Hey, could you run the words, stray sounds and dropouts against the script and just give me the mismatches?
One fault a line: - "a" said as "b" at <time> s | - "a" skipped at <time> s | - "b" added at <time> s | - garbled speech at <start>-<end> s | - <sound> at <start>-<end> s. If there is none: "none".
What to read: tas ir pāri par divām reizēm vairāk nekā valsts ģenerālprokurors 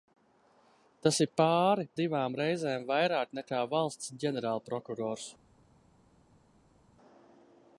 - "par" skipped at 1.9 s